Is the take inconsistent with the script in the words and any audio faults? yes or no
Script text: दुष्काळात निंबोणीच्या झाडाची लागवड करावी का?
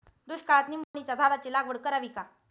yes